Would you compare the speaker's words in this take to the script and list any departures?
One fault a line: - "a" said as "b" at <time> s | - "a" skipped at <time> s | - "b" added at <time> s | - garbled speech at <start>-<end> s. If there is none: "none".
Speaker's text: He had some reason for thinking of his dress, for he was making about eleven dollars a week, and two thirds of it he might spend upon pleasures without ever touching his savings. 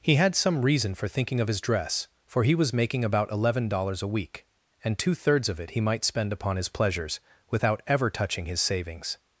- "his" added at 6.5 s